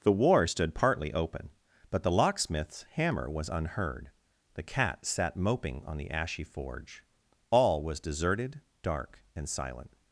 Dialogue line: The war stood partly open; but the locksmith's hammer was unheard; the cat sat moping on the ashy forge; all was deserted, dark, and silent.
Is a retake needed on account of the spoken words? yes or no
no